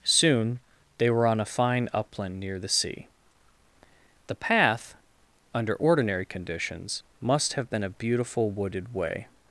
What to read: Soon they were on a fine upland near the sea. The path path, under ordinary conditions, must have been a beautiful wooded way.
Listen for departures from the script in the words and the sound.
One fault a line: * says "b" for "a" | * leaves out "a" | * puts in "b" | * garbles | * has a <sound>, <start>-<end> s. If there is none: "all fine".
* leaves out "path"